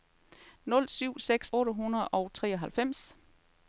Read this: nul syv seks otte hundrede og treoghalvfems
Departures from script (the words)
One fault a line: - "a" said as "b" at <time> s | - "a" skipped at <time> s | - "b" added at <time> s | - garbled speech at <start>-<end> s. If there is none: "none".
none